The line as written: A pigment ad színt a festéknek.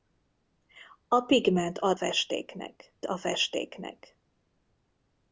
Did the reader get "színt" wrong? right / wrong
wrong